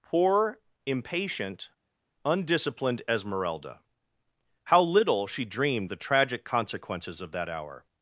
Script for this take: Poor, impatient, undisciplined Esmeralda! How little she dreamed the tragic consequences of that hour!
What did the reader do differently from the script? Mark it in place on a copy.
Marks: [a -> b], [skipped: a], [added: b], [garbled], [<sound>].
Poor, impatient, undisciplined Esmeralda! How little she dreamed the tragic consequences of that hour!